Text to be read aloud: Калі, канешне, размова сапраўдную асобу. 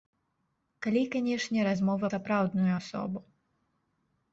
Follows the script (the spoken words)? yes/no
yes